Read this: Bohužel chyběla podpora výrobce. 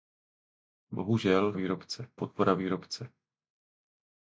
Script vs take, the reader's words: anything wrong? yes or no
yes